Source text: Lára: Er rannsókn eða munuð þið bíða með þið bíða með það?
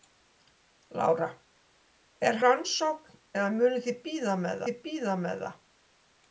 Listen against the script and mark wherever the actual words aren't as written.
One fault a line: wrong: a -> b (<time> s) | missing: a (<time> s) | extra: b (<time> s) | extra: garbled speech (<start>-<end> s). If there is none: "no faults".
no faults